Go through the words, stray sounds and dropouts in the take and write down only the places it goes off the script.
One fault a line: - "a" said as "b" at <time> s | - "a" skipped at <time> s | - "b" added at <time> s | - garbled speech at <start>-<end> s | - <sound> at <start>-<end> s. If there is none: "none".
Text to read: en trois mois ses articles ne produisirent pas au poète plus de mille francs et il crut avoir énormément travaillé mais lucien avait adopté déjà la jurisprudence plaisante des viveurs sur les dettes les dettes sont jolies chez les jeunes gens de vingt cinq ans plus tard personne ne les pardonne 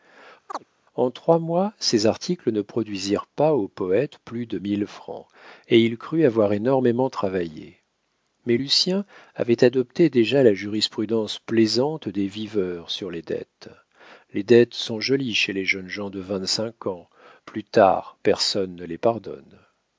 - chirp at 0.5-0.6 s